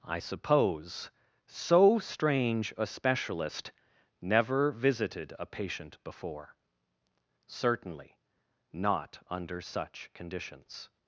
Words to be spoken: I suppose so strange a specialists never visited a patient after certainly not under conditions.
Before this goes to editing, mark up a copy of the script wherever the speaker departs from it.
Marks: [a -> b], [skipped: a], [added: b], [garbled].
I suppose so strange a [specialists -> specialist] never visited a patient [after -> before] certainly not under [added: such] conditions.